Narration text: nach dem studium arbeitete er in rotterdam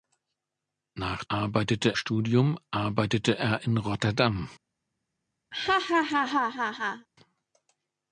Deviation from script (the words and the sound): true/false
true